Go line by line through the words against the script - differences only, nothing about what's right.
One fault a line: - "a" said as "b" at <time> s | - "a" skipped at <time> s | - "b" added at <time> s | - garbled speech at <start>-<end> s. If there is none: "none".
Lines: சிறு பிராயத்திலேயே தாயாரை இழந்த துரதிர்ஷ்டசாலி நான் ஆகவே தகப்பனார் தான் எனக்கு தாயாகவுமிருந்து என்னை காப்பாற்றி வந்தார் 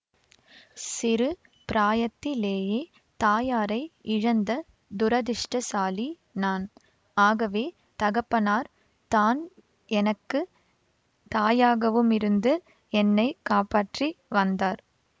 none